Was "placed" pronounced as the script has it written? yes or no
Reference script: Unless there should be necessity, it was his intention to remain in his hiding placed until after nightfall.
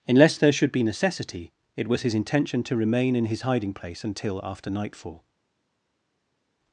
no